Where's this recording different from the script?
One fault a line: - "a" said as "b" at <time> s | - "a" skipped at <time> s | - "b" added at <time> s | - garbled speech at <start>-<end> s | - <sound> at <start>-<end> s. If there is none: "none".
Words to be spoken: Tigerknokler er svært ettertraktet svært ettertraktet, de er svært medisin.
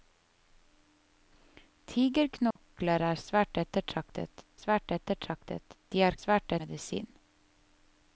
- dropout at 2.5-2.6 s